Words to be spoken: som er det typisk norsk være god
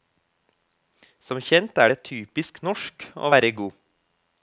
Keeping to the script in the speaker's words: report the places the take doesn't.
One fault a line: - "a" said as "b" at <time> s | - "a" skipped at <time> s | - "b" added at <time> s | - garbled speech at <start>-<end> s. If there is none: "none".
- "kjent" added at 1.5 s
- "å" added at 3.1 s